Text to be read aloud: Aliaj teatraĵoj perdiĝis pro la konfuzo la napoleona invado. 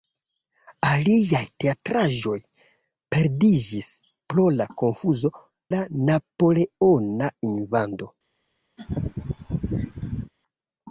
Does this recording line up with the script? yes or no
yes